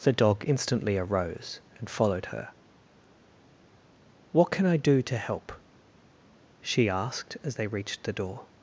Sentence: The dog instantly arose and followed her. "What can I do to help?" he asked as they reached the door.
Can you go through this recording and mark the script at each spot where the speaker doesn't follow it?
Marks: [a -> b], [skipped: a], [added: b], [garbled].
The dog instantly arose and followed her. "What can I do to help?" [he -> she] asked as they reached the door.